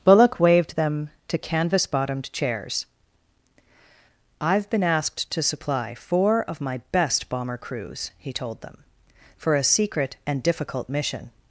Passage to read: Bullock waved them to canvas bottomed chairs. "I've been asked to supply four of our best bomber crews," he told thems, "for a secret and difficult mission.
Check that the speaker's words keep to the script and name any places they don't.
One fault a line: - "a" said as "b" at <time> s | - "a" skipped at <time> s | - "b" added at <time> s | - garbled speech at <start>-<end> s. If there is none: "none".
- "our" said as "my" at 6.6 s
- "thems" said as "them" at 8.6 s